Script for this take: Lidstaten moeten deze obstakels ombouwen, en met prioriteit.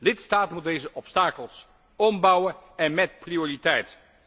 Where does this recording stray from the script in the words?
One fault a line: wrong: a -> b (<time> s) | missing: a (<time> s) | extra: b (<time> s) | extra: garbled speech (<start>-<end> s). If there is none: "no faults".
no faults